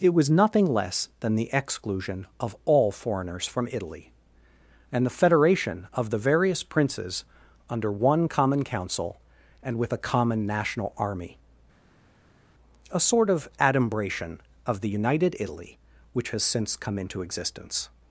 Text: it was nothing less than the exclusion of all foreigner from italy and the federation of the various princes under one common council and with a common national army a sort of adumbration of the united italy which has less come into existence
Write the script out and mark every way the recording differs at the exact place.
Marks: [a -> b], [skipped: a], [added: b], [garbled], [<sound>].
it was nothing less than the exclusion of all [foreigner -> foreigners] from italy and the federation of the various princes under one common council and with a common national army a sort of adumbration of the united italy which has [less -> since] come into existence